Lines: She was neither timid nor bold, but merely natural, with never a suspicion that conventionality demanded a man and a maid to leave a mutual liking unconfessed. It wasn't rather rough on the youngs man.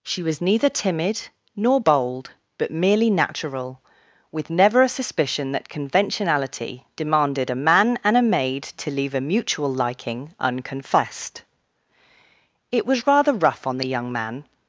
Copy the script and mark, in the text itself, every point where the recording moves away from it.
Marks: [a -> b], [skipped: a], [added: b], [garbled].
She was neither timid nor bold, but merely natural, with never a suspicion that conventionality demanded a man and a maid to leave a mutual liking unconfessed. It [wasn't -> was] rather rough on the [youngs -> young] man.